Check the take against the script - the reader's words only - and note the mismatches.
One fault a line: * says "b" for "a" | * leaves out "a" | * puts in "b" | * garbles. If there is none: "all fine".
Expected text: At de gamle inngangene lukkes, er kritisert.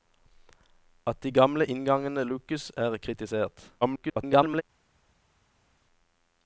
* garbles